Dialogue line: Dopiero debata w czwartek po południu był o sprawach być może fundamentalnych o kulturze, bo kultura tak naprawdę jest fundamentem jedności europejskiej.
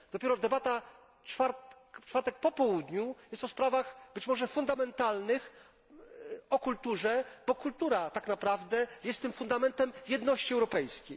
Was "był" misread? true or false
true